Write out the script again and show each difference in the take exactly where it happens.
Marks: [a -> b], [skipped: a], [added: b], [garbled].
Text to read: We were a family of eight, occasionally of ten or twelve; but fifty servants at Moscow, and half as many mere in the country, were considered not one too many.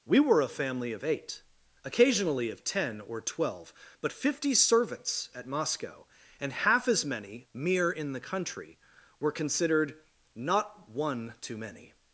We were a family of eight, occasionally of ten or twelve; but fifty servants at Moscow, and half as many mere in the country, were considered not one too many.